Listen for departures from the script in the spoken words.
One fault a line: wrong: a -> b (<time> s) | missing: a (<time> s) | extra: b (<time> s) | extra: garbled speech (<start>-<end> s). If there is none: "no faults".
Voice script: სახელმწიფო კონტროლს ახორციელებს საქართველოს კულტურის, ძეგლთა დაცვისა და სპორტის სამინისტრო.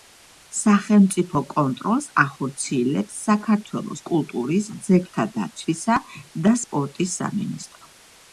no faults